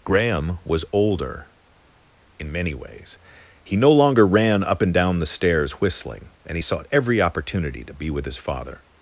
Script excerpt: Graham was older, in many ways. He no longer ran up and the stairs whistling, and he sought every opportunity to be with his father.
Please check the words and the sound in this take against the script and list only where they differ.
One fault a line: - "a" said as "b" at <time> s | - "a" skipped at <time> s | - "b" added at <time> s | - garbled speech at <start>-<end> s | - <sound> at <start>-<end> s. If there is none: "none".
- "down" added at 4.9 s